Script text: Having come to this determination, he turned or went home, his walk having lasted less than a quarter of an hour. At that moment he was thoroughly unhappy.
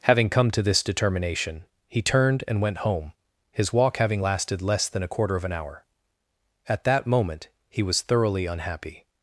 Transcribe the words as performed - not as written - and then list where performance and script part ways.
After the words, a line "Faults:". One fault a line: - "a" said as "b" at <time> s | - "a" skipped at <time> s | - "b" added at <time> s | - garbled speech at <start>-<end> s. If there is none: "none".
Having come to this determination, he turned and went home, his walk having lasted less than a quarter of an hour. At that moment he was thoroughly unhappy.
Faults:
- "or" said as "and" at 2.5 s